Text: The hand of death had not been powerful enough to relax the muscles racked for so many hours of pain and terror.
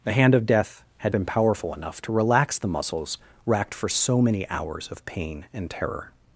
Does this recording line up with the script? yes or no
no